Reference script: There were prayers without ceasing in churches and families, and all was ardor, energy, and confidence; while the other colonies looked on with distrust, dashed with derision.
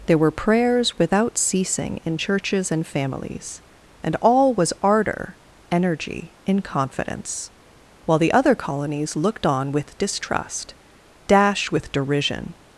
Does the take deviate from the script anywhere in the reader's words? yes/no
yes